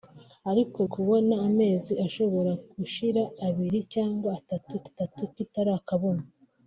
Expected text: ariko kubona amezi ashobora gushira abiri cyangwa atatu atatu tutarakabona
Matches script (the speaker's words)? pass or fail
pass